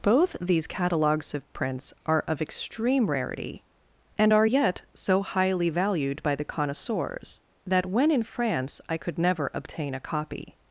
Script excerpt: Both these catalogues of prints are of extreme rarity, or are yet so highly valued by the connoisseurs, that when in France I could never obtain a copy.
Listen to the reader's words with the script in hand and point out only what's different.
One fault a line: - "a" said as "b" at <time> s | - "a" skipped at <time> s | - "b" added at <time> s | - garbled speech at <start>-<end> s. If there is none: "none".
- "or" said as "and" at 4.2 s